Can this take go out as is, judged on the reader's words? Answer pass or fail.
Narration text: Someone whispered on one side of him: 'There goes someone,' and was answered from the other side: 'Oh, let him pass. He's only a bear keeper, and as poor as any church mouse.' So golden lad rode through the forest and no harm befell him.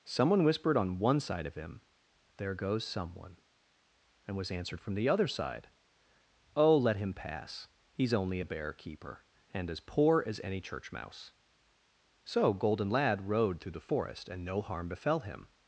pass